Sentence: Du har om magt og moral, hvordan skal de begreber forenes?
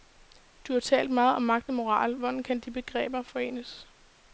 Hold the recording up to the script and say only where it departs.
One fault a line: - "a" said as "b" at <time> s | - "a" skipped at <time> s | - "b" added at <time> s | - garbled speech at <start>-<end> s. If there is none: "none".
- "talt meget" added at 0.8 s
- "skal" said as "kan" at 2.4 s